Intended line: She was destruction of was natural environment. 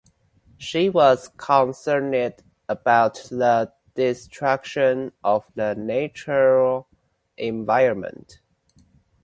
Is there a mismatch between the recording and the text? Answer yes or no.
yes